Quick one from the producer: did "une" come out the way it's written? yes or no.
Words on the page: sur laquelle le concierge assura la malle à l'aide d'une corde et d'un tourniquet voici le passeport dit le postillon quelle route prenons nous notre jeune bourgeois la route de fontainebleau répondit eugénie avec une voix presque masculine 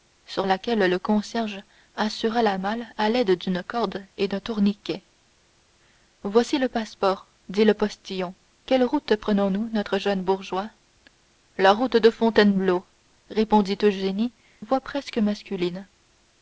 no